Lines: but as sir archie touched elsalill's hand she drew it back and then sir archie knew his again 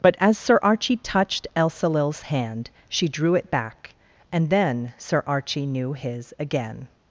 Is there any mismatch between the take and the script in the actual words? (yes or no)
no